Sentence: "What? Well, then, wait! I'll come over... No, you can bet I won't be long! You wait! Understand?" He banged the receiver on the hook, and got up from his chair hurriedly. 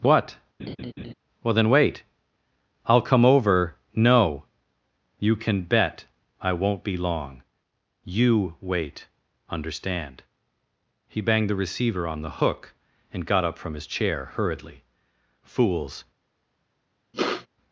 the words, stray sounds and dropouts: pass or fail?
fail